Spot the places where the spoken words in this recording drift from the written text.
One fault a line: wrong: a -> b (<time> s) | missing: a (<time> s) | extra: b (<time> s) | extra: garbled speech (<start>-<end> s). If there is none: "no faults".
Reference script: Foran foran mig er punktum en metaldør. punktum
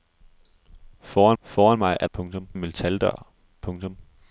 no faults